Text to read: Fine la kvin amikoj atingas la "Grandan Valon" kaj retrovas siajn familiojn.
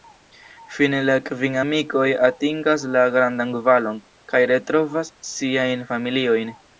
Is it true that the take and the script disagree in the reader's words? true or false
false